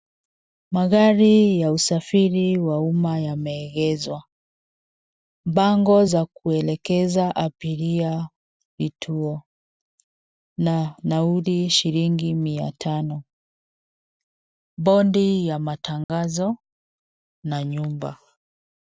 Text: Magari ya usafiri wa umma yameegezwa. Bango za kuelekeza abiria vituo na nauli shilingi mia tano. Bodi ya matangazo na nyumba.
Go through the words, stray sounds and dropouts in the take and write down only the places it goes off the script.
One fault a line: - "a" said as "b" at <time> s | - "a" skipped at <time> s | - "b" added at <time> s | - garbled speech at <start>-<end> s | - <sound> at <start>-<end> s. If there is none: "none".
- dropout at 16.0-16.1 s